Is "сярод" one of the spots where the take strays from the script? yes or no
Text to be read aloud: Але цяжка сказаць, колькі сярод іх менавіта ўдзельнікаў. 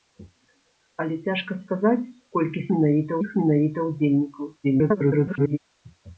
yes